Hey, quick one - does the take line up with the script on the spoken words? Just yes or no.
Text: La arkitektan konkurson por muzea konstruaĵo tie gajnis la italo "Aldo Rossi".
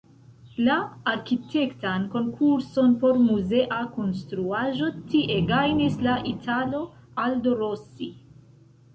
yes